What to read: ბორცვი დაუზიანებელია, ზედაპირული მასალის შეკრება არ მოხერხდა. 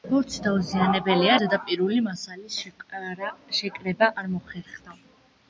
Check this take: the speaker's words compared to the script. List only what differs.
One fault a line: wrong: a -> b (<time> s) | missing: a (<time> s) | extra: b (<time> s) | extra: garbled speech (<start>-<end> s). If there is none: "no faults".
no faults